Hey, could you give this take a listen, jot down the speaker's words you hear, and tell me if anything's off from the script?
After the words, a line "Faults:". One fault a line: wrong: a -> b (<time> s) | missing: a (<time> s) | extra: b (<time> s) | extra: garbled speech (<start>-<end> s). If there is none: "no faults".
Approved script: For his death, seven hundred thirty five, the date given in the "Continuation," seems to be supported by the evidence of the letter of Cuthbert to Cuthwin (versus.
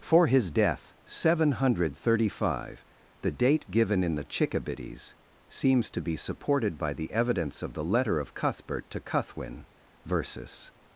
For his death, seven hundred thirty five, the date given in the "Chickabiddies," seems to be supported by the evidence of the letter of Cuthbert to Cuthwin (versus.
Faults:
wrong: Continuation -> Chickabiddies (4.2 s)